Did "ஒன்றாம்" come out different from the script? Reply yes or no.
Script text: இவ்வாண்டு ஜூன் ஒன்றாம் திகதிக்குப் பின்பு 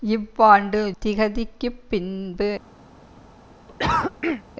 yes